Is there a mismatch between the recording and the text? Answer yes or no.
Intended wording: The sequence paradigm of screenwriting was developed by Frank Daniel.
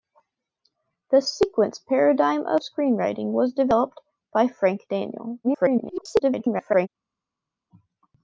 yes